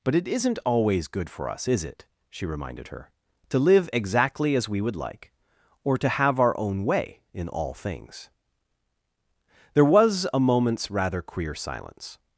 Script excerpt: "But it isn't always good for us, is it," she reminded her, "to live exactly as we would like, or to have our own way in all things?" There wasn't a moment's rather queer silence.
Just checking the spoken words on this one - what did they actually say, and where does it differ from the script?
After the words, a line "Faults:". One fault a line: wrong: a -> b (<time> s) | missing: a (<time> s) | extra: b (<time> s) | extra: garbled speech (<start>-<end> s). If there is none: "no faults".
"But it isn't always good for us, is it," she reminded her, "to live exactly as we would like, or to have our own way in all things?" There was a moment's rather queer silence.
Faults:
wrong: wasn't -> was (9.8 s)